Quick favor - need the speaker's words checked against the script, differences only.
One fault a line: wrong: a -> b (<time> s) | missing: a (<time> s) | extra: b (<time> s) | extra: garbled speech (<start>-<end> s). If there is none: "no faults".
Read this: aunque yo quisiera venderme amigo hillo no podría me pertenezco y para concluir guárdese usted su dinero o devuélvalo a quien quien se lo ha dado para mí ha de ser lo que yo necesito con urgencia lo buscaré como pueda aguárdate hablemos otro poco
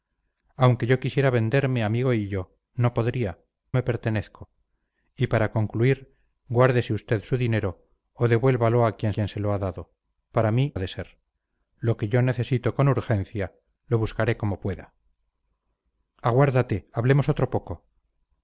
no faults